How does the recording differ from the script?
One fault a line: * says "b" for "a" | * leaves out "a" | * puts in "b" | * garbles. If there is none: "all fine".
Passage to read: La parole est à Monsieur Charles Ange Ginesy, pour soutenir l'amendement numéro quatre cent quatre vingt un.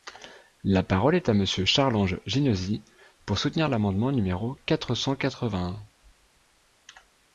all fine